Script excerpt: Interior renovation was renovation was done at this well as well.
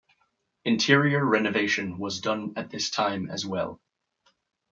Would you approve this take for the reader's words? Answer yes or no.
no